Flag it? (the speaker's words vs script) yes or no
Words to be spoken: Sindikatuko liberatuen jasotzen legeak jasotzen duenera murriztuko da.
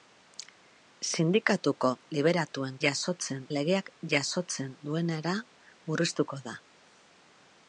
no